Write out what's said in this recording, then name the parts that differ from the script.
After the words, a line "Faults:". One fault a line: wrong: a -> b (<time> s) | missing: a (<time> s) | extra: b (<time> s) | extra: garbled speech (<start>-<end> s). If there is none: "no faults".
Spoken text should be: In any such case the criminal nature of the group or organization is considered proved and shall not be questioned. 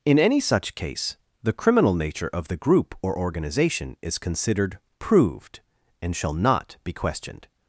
In any such case the criminal nature of the group or organization is considered proved and shall not be questioned.
Faults:
no faults